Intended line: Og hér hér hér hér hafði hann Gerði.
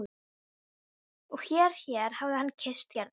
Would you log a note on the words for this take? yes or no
yes